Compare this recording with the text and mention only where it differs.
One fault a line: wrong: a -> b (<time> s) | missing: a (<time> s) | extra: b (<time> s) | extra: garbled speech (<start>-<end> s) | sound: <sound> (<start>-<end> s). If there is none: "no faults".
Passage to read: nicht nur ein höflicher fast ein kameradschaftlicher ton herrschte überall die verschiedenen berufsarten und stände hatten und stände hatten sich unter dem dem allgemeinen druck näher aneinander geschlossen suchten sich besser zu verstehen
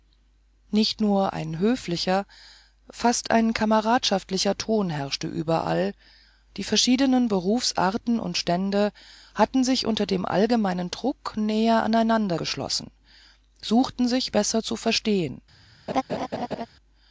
missing: und stände hatten (9.6 s)
missing: dem (10.2 s)
sound: laugh (15.9-16.7 s)